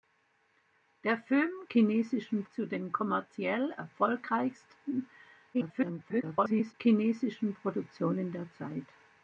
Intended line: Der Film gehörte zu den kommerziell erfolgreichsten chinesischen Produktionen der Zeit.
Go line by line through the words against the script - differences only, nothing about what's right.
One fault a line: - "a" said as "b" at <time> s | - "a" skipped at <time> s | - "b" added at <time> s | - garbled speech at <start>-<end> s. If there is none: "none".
- "gehörte" said as "chinesischen" at 1.7 s
- garbled speech at 5.5-6.7 s